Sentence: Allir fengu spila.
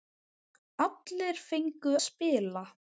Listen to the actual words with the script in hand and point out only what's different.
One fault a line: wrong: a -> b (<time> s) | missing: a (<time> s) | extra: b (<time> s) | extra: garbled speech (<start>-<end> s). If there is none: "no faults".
no faults